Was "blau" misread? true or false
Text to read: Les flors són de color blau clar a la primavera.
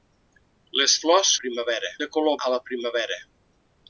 true